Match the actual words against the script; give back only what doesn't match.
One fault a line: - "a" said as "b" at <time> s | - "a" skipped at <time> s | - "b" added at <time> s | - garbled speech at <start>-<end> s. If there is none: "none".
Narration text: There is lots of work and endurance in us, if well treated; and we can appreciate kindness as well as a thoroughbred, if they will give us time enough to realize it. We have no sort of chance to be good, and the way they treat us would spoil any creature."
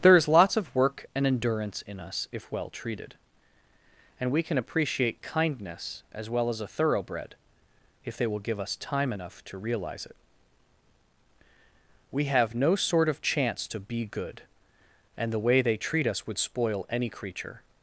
none